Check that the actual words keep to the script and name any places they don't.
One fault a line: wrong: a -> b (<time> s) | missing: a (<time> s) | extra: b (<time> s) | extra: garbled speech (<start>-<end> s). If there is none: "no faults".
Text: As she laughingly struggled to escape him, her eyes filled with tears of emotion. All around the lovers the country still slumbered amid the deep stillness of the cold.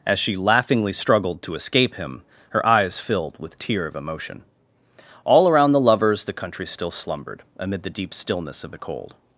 wrong: tears -> tear (3.6 s)